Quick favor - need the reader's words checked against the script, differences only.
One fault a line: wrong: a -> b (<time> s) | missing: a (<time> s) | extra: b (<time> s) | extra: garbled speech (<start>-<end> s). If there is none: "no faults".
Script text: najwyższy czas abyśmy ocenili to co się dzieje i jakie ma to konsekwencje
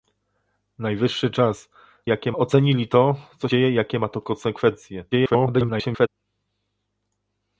wrong: abyśmy -> jakie (2.1 s)
missing: się (3.5 s)
extra: garbled speech (5.1-6.1 s)